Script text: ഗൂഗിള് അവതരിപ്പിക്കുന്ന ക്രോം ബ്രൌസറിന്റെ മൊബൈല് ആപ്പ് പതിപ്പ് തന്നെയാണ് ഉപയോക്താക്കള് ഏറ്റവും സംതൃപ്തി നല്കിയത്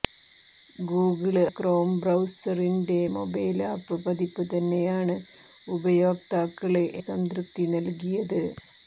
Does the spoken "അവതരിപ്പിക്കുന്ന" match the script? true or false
false